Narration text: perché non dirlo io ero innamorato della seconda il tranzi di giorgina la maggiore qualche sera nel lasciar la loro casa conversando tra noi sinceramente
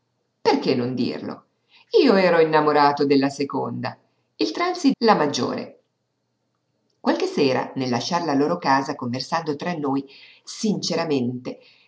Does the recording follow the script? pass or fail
fail